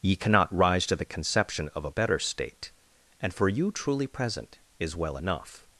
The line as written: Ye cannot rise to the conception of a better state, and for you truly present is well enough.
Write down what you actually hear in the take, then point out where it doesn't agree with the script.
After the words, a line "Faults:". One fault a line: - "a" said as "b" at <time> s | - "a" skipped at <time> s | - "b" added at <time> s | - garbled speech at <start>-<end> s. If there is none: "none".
Ye cannot rise to the conception of a better state, and for you truly present is well enough.
Faults:
none